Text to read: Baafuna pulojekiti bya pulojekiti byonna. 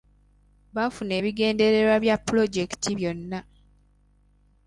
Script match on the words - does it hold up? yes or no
no